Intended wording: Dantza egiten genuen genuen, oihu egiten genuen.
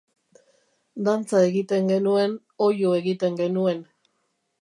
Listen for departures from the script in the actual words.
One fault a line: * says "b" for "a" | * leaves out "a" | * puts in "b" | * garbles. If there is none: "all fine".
* leaves out "genuen"